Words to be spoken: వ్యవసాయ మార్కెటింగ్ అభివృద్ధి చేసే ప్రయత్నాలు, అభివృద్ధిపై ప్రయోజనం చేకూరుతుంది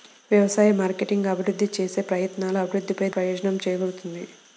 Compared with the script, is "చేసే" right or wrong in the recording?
right